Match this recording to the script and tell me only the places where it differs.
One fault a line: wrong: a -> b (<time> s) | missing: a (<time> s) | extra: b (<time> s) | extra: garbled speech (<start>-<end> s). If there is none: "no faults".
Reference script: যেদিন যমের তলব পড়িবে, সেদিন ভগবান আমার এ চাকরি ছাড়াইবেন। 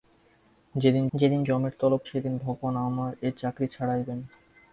extra: যেদিন (1.1 s)
missing: পড়িবে (2.0 s)